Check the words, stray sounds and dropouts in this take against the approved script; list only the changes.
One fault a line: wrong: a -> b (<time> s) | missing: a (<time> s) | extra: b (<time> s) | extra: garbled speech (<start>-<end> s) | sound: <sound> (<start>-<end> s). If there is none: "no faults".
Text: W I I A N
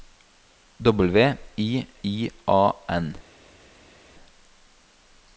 no faults